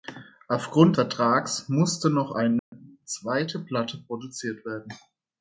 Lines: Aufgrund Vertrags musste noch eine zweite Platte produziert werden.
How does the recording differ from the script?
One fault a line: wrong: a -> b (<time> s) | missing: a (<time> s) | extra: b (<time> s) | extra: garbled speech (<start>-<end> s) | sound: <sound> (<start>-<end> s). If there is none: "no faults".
sound: dropout (2.6-2.7 s)